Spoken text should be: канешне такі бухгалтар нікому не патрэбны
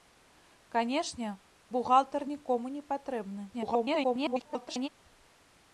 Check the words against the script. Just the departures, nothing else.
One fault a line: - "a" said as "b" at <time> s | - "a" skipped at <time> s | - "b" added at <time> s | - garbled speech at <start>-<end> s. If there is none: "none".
- "такі" skipped at 1.3 s
- garbled speech at 3.5-4.9 s